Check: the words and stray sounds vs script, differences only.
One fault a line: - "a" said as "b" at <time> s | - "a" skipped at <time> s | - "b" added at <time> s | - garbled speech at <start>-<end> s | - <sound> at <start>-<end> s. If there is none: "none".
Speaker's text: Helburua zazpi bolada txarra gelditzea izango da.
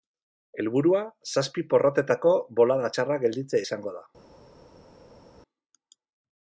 - "porrotetako" added at 1.8 s